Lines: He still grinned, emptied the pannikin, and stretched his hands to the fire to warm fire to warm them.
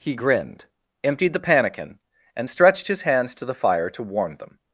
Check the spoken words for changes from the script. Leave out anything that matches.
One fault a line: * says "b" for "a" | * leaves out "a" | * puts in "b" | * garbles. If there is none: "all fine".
* leaves out "still"
* leaves out "fire to warm"